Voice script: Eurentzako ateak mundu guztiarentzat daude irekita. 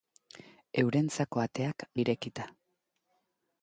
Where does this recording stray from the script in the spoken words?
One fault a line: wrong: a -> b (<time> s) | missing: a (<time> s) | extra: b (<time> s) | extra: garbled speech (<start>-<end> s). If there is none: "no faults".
missing: mundu guztiarentzat daude (1.9 s)